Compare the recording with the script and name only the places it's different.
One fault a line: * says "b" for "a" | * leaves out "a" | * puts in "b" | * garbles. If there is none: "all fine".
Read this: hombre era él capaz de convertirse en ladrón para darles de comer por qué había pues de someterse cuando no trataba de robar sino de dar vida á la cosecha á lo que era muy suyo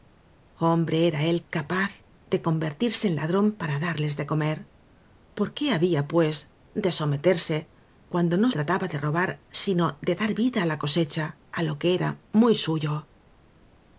all fine